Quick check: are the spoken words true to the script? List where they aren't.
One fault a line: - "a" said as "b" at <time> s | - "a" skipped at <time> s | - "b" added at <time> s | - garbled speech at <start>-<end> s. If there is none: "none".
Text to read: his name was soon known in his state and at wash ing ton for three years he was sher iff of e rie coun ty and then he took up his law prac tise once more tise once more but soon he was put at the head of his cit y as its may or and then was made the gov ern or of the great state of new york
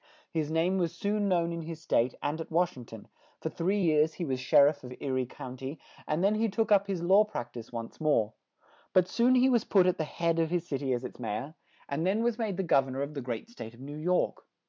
- "tise once more" skipped at 8.3 s